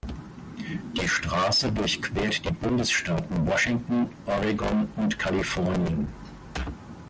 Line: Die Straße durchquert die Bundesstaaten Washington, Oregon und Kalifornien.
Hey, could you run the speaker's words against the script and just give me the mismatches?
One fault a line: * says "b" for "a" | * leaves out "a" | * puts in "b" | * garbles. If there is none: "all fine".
all fine